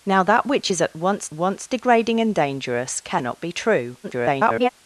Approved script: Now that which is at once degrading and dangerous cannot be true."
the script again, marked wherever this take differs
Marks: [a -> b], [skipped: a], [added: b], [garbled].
Now that which is at once [added: once] degrading and dangerous cannot be true." [garbled]